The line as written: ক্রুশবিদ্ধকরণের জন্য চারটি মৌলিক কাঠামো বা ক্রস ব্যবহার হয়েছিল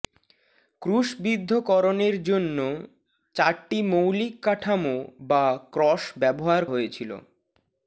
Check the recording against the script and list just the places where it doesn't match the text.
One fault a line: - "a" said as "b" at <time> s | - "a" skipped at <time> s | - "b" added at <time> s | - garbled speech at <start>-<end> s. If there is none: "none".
none